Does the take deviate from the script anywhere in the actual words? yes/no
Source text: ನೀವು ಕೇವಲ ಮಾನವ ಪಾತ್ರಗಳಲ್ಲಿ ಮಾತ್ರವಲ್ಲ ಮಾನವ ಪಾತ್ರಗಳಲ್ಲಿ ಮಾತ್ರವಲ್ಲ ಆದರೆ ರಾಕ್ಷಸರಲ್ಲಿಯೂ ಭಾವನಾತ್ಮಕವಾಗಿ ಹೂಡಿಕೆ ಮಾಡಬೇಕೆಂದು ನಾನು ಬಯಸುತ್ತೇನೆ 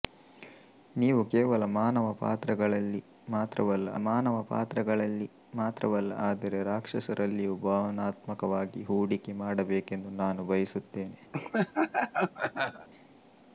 no